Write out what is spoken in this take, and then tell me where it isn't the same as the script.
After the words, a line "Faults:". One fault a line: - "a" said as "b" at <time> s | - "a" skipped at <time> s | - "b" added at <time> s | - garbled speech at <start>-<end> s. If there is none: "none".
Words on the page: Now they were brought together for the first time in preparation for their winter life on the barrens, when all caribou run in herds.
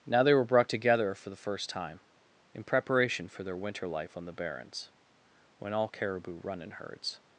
Now they were brought together for the first time in preparation for their winter life on the barrens, when all caribou run in herds.
Faults:
none